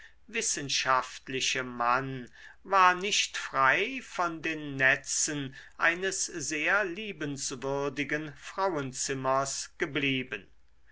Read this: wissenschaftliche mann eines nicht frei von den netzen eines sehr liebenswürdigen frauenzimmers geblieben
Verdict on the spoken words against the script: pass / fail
fail